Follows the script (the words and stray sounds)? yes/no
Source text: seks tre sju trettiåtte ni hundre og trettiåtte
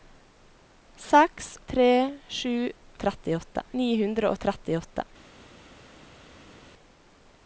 yes